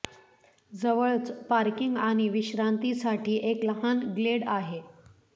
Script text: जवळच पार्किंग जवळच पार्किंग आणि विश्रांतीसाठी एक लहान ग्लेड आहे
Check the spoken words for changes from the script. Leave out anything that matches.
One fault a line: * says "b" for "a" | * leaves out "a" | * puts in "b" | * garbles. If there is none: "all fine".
* leaves out "जवळच पार्किंग"